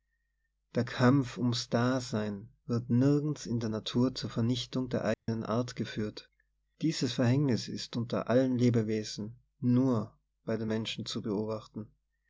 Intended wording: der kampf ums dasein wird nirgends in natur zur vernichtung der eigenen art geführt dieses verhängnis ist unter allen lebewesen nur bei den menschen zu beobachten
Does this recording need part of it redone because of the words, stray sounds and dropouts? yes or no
yes